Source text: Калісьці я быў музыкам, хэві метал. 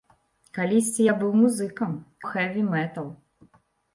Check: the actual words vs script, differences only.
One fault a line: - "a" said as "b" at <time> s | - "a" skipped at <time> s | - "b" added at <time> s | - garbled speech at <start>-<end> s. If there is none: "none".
none